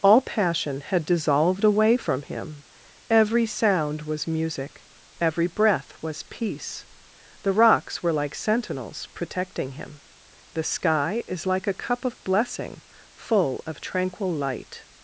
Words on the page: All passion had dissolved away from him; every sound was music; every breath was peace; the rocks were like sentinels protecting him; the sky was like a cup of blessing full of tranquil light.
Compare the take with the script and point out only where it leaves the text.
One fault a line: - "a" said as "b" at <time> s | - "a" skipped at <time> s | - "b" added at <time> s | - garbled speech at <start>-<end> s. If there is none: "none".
- "was" said as "is" at 11.3 s